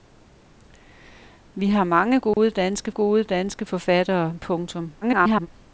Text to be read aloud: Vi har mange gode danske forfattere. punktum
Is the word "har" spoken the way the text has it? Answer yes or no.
yes